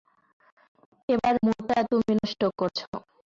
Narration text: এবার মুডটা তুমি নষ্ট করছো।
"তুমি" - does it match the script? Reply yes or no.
yes